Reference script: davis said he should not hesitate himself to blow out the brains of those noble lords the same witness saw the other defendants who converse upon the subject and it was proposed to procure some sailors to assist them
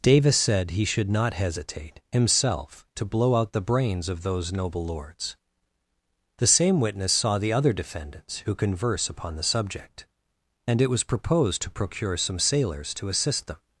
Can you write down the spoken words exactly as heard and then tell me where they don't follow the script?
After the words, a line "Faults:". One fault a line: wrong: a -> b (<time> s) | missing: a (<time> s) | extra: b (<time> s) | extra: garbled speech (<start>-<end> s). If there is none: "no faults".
davis said he should not hesitate himself to blow out the brains of those noble lords the same witness saw the other defendants who converse upon the subject and it was proposed to procure some sailors to assist them
Faults:
no faults